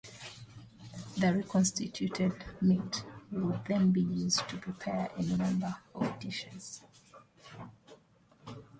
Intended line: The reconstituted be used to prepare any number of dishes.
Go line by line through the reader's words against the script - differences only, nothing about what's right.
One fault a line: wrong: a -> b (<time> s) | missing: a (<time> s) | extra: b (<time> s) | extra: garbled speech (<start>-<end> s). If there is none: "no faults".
extra: meat would then (2.6 s)